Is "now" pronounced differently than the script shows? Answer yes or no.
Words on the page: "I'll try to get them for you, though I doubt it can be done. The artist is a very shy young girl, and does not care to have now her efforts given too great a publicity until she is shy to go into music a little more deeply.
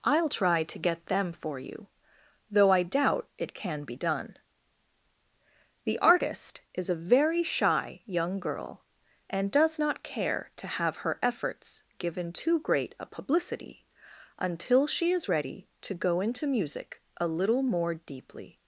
yes